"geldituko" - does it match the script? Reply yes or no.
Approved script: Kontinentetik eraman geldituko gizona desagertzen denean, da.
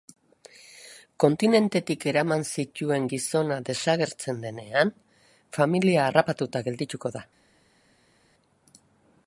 no